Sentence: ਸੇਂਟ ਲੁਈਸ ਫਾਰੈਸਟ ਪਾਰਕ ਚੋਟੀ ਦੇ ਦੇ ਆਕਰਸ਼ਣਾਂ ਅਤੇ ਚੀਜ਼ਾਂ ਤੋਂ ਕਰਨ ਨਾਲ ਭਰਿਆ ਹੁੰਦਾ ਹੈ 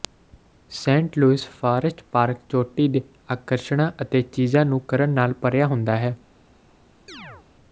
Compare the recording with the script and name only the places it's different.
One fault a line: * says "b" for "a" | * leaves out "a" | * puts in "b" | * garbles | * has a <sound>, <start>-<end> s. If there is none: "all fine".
* leaves out "ਦੇ"
* says "ਨੂੰ" for "ਤੋਂ"
* has a chirp, 7.1-7.5 s